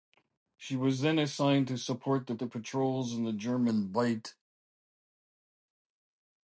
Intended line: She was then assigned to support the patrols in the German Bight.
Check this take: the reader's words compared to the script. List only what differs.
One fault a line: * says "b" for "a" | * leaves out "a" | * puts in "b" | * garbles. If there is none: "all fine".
* puts in "the"